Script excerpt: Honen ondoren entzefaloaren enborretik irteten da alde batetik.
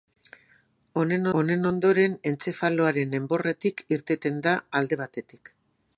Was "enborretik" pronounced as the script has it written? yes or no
yes